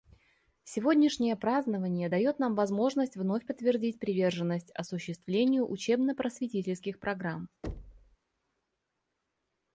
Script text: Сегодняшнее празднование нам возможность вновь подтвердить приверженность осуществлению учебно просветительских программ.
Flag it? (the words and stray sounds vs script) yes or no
yes